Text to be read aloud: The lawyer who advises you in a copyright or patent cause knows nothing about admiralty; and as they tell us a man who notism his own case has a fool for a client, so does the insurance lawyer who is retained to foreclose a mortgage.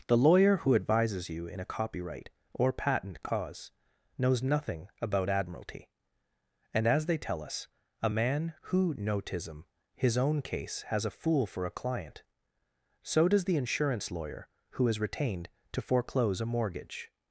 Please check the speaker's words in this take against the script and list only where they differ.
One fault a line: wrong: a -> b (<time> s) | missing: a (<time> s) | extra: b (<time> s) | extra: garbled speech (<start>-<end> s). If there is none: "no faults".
no faults